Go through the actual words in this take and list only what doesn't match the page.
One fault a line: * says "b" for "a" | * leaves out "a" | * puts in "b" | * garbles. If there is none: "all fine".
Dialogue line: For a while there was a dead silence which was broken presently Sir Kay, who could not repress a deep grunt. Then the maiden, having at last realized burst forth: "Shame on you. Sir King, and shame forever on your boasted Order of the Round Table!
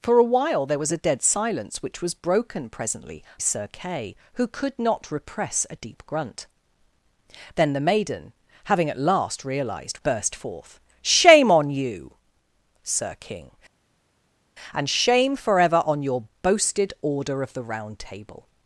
all fine